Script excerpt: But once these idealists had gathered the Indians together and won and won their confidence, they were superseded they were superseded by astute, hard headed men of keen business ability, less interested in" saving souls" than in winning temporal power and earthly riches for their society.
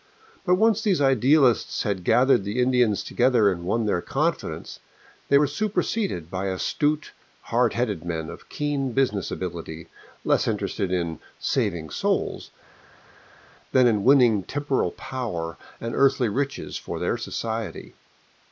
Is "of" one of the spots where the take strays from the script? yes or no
no